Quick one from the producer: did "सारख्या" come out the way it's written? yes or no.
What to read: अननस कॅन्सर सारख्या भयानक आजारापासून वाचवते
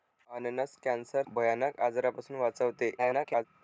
no